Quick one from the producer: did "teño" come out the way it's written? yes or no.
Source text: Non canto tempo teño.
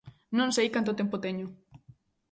yes